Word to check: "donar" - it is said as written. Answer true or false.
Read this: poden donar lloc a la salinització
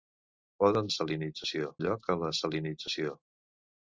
false